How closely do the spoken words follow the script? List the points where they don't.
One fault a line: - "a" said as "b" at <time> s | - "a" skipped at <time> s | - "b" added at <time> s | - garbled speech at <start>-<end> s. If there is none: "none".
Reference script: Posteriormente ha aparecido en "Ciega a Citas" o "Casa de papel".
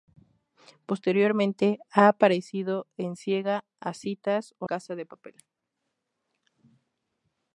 none